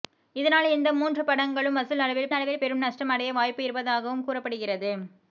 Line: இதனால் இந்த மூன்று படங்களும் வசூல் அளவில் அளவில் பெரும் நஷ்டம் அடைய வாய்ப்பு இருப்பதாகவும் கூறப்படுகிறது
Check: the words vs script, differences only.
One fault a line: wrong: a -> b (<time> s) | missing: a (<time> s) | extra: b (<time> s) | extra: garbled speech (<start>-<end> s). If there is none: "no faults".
no faults